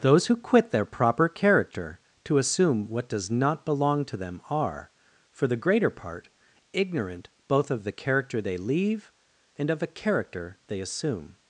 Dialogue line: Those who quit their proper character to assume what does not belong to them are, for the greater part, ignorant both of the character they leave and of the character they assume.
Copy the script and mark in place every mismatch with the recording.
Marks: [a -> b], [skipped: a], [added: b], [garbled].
Those who quit their proper character to assume what does not belong to them are, for the greater part, ignorant both of the character they leave and of [the -> a] character they assume.